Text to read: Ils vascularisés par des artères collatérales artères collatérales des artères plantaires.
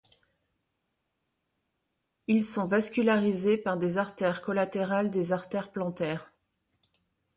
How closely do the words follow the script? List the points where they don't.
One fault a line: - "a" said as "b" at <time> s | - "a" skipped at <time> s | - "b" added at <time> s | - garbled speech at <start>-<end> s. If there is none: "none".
- "sont" added at 2.4 s
- "artères collatérales" skipped at 5.1 s